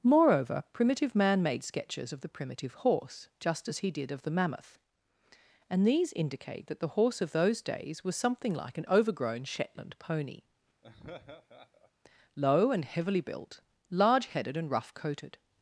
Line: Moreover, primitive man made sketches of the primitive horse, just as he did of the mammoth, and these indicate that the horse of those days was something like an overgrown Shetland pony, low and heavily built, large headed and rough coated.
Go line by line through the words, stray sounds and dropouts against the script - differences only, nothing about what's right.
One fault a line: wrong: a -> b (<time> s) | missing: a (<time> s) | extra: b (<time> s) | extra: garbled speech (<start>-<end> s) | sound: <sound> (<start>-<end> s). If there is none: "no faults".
sound: laugh (10.8-11.9 s)